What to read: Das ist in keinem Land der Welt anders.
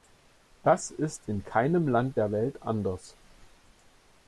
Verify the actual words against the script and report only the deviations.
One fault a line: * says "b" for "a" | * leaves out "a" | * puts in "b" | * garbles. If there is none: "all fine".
all fine